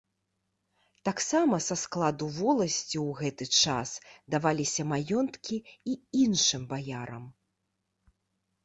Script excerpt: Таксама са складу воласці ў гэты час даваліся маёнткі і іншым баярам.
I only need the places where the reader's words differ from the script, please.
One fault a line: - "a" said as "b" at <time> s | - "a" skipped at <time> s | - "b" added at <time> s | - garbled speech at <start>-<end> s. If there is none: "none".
none